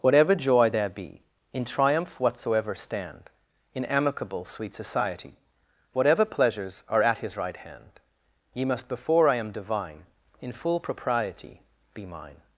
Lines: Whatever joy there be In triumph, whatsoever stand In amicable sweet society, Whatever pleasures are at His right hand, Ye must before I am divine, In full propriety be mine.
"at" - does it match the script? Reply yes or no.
yes